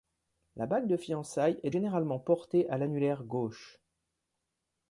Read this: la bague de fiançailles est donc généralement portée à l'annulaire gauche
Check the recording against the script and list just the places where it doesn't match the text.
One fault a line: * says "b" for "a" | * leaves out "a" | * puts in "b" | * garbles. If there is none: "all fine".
* leaves out "donc"